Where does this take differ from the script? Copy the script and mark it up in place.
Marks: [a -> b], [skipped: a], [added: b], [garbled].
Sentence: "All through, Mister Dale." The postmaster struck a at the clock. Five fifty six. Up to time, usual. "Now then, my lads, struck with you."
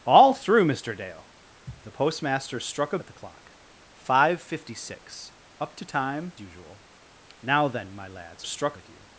"All through, Mister Dale." The postmaster struck a at the clock. Five fifty six. Up to time, usual. "Now then, my lads, struck with you."